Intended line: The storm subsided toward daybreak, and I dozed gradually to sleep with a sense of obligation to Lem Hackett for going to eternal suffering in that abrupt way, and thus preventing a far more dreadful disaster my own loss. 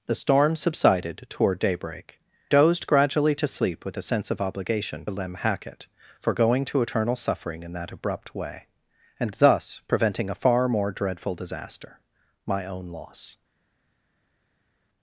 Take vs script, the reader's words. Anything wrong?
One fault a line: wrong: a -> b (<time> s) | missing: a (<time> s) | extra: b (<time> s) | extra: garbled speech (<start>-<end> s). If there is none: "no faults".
missing: and I (2.2 s)
missing: to (5.0 s)